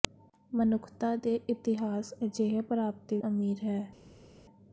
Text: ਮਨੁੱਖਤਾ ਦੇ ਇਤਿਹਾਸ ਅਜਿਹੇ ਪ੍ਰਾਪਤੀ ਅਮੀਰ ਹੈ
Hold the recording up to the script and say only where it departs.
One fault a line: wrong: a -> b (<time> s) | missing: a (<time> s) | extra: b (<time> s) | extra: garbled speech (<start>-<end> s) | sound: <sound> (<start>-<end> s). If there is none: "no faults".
no faults